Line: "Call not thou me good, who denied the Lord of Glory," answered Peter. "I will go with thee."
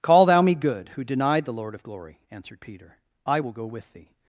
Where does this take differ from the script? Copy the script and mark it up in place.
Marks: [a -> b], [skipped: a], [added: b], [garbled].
"Call [skipped: not] thou me good, who denied the Lord of Glory," answered Peter. "I will go with thee."